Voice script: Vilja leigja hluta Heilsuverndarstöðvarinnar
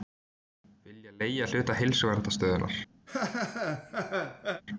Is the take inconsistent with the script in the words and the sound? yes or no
yes